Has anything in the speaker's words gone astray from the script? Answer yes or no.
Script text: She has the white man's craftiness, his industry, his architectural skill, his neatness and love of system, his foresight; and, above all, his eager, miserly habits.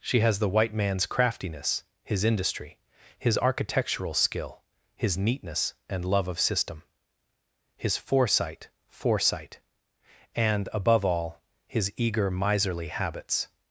yes